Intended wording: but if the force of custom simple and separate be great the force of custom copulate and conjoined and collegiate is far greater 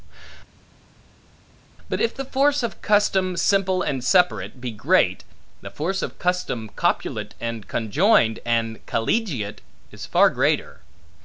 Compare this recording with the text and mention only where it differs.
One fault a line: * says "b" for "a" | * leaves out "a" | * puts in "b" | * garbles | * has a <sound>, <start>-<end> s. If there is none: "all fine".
all fine